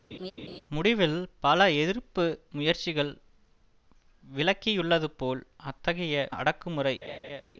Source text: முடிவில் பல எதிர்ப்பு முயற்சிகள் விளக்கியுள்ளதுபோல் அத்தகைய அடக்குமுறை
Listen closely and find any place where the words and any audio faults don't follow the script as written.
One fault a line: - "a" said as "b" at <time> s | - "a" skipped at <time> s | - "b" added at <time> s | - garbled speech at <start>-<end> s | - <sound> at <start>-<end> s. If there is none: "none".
- laugh at 0.1-0.6 s
- laugh at 7.0-7.4 s